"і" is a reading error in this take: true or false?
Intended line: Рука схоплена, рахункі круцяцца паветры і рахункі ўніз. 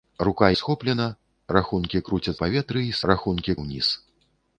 false